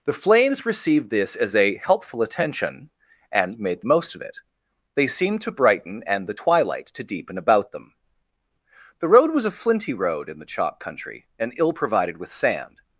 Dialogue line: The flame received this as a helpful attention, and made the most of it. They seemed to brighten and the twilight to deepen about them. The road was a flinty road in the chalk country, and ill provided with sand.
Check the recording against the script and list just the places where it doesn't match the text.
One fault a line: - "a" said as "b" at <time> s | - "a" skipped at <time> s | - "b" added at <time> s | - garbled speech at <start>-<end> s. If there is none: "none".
- "flame" said as "flames" at 0.1 s